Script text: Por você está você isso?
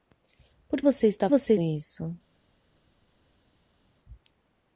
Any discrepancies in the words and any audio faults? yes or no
no